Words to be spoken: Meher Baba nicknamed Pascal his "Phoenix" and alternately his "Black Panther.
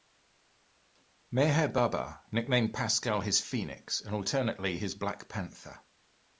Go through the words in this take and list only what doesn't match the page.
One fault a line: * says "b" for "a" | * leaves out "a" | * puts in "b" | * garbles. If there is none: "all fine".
all fine